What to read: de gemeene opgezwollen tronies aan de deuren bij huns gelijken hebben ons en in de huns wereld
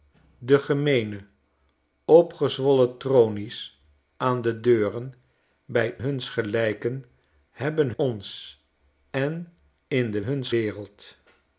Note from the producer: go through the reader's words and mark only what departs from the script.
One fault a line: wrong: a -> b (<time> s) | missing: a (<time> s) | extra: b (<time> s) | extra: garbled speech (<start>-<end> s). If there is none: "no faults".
no faults